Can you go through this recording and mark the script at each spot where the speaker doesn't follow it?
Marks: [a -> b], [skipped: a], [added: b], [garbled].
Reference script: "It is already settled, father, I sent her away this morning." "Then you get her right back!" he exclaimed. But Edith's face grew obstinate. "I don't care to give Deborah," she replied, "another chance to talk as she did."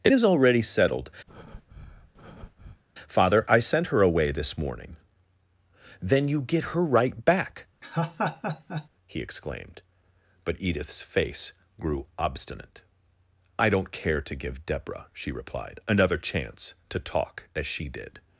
"It is already settled, father, I sent her away this morning." "Then you get her right back!" he exclaimed. But Edith's face grew obstinate. "I don't care to give Deborah," she replied, "another chance to talk as she did."